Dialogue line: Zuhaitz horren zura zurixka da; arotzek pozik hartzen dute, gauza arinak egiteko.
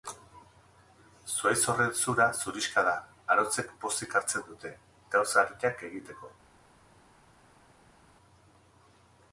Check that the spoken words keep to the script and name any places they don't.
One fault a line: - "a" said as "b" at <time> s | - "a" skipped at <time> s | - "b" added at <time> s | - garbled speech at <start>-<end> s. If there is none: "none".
none